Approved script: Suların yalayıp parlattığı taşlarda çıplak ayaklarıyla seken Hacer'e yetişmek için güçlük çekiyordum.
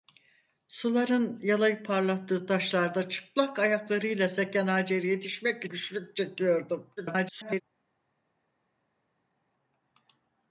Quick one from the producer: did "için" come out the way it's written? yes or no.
no